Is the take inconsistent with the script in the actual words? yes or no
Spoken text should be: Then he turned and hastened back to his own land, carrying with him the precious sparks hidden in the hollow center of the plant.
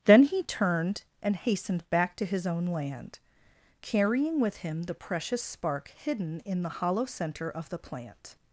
yes